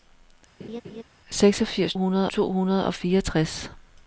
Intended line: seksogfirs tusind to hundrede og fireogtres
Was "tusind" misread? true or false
true